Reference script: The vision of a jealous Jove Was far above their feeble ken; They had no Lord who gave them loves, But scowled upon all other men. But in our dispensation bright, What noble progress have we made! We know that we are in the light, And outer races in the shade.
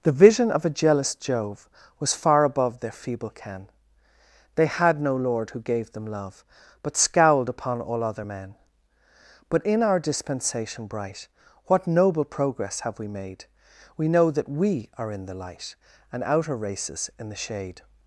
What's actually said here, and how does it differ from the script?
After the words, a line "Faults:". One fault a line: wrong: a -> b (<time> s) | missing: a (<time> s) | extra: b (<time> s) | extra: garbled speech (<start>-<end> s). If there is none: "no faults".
The vision of a jealous Jove Was far above their feeble ken; They had no Lord who gave them love, But scowled upon all other men. But in our dispensation bright, What noble progress have we made! We know that we are in the light, And outer races in the shade.
Faults:
wrong: loves -> love (6.1 s)